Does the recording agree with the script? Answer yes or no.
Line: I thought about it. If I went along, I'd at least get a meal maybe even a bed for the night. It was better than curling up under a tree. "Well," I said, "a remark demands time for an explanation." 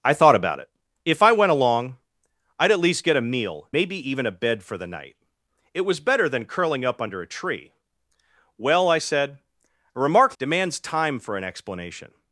yes